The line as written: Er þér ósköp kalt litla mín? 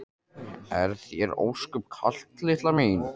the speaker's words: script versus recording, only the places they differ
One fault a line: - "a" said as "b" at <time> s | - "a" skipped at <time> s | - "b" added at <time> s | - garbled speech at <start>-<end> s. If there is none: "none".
none